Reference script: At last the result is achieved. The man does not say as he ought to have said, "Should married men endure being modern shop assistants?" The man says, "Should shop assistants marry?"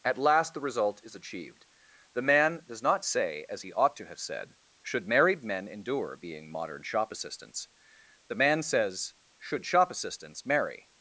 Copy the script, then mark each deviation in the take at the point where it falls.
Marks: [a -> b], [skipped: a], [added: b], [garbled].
At last the result is achieved. The man does not say as he ought to have said, "Should married men endure being modern shop assistants?" The man says, "Should shop assistants marry?"